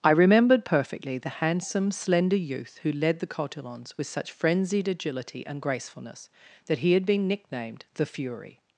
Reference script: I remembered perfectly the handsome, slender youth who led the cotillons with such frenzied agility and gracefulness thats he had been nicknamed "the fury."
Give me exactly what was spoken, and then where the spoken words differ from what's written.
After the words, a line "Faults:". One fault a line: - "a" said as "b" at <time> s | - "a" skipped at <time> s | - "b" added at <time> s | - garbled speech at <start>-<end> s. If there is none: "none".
I remembered perfectly the handsome, slender youth who led the cotillons with such frenzied agility and gracefulness that he had been nicknamed "the fury."
Faults:
- "thats" said as "that" at 6.7 s